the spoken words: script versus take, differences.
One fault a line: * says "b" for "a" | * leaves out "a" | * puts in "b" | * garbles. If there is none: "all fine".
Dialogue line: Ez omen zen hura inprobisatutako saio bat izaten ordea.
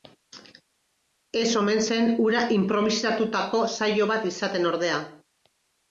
all fine